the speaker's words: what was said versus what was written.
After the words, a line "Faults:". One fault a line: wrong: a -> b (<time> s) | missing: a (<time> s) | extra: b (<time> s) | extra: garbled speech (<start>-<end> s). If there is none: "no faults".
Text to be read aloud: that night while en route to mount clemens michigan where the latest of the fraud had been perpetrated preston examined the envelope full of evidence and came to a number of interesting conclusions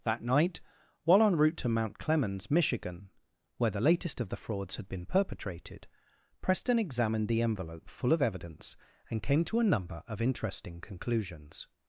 that night while en route to mount clemens michigan where the latest of the frauds had been perpetrated preston examined the envelope full of evidence and came to a number of interesting conclusions
Faults:
wrong: fraud -> frauds (4.4 s)